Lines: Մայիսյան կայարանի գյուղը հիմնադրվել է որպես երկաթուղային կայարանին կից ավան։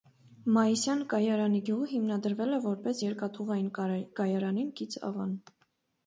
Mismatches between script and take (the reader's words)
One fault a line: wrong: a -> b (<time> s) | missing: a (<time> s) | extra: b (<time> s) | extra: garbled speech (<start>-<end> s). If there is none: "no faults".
no faults